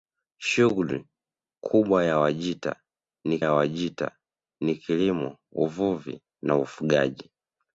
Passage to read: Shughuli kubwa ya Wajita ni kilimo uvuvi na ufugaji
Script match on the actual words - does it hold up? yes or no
no